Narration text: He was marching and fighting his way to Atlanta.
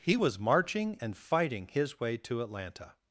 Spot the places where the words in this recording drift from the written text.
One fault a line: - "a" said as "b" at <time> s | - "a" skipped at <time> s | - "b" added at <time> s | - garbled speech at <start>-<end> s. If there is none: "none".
none